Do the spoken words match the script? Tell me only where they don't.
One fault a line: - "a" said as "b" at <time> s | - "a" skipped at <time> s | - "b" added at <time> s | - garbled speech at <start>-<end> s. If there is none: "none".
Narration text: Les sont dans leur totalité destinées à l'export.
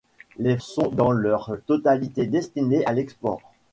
none